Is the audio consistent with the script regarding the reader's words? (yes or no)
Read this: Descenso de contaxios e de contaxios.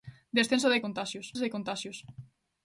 yes